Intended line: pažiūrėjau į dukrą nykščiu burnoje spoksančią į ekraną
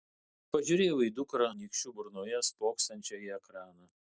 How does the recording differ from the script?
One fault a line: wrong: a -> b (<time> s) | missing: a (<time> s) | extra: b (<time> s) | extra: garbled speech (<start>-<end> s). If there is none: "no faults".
no faults